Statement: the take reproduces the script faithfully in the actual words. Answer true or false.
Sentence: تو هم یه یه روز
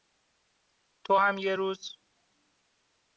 false